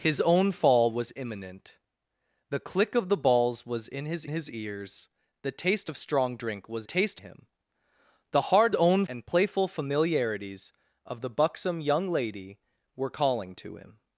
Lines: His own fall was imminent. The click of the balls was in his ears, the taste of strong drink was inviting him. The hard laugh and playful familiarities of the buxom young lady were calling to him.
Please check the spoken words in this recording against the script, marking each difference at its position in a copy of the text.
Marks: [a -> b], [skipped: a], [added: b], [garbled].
His own fall was imminent. The click of the balls was in his [added: his] ears, the taste of strong drink was [inviting -> taste] him. The hard [laugh -> own] and playful familiarities of the buxom young lady were calling to him.